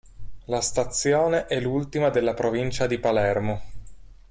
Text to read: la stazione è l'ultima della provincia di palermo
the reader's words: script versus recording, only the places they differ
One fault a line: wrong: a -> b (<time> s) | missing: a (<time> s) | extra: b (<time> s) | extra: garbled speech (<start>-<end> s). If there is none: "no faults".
no faults